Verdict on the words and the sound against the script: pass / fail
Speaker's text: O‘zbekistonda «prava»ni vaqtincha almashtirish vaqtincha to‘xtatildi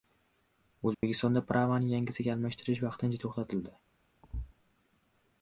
fail